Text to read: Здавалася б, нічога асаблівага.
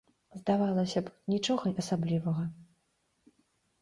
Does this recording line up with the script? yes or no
yes